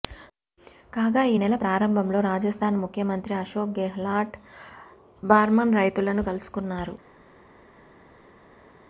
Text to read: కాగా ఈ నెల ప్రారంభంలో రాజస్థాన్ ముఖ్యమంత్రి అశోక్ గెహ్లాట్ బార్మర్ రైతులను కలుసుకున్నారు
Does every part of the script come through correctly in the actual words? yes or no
yes